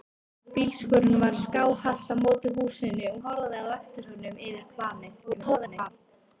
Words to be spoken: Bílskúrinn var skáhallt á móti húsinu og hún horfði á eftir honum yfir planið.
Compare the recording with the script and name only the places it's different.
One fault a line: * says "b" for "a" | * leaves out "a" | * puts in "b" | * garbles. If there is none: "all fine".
* leaves out "hún"
* garbles